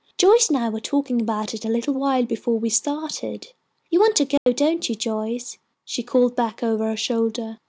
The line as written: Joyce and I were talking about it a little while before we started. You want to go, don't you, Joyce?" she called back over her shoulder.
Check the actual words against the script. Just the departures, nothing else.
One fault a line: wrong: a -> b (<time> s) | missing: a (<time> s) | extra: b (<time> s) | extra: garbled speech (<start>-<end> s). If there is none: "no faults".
no faults